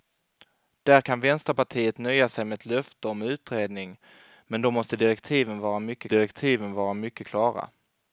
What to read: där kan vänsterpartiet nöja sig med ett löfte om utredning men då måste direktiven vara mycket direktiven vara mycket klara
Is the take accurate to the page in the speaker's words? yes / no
yes